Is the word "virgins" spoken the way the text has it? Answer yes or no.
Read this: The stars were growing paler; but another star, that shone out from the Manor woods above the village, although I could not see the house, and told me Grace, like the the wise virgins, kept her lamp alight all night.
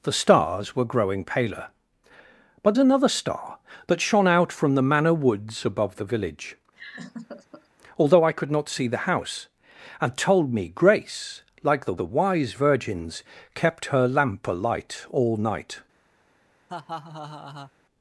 yes